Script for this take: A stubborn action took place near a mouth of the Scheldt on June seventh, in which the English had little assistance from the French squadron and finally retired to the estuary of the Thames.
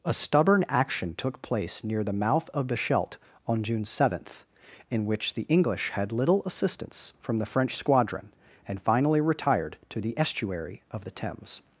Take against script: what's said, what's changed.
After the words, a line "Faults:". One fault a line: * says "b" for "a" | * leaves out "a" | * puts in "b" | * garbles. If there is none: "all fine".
A stubborn action took place near the mouth of the Scheldt on June seventh, in which the English had little assistance from the French squadron and finally retired to the estuary of the Thames.
Faults:
* says "the" for "a"